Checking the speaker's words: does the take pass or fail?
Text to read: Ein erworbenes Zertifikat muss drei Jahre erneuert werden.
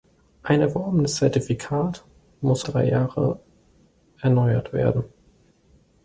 pass